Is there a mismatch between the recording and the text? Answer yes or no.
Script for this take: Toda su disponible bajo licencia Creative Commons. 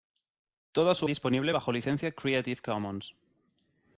no